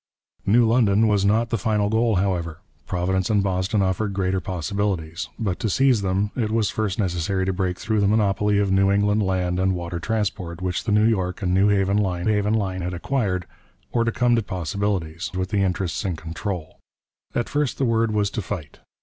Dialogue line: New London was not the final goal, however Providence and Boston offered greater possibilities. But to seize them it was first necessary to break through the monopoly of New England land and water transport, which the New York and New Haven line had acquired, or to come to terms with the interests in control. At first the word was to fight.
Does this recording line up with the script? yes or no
no